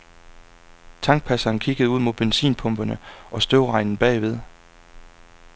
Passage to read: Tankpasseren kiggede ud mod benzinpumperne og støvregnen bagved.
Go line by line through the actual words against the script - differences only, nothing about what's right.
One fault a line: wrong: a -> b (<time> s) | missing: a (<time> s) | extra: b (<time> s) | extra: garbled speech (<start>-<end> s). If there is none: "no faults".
no faults